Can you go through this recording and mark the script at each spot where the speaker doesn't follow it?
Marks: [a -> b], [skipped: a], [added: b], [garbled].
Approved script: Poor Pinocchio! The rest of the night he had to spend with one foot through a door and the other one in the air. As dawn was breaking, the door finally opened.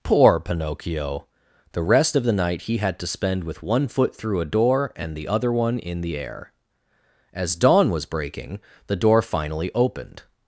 Poor Pinocchio! The rest of the night he had to spend with one foot through a door and the other one in the air. As dawn was breaking, the door finally opened.